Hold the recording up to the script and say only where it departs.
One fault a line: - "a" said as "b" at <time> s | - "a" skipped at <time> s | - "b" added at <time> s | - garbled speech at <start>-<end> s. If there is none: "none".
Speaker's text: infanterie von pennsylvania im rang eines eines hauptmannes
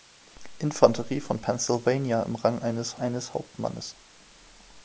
none